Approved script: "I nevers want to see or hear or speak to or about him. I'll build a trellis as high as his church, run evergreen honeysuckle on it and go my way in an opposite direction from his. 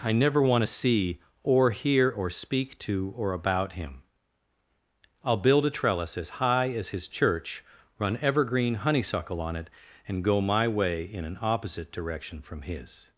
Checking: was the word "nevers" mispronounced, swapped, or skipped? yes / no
yes